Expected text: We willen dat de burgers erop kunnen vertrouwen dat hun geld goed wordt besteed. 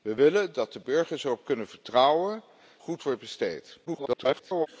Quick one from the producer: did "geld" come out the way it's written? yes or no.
no